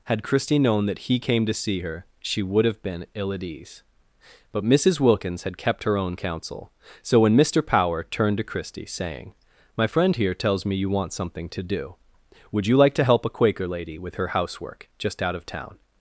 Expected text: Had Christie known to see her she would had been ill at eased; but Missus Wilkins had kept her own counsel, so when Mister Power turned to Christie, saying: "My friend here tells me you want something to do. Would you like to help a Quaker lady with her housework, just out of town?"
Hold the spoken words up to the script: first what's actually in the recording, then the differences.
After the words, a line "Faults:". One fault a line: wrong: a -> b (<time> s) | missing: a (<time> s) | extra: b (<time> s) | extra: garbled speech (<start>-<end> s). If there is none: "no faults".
Had Christie known that he came to see her she would have been ill at ease; but Missus Wilkins had kept her own counsel, so when Mister Power turned to Christie, saying: "My friend here tells me you want something to do. Would you like to help a Quaker lady with her housework, just out of town?"
Faults:
extra: that he came (0.9 s)
wrong: had -> have (2.6 s)
wrong: eased -> ease (3.4 s)